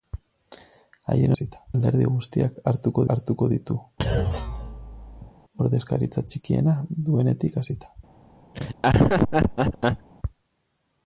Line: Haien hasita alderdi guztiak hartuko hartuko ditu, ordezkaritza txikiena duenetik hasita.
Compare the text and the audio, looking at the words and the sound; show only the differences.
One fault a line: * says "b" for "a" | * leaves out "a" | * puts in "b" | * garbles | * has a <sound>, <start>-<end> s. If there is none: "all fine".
* has a thud, 4.0-5.3 s
* has a laugh, 8.5-10.1 s